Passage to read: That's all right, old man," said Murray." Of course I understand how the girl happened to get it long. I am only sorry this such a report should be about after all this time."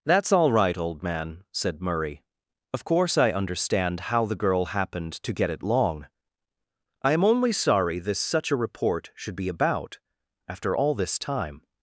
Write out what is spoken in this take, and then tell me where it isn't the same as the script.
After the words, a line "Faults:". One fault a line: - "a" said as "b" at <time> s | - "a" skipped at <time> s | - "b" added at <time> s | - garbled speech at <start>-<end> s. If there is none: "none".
That's all right, old man," said Murray." Of course I understand how the girl happened to get it long. I am only sorry this such a report should be about after all this time."
Faults:
none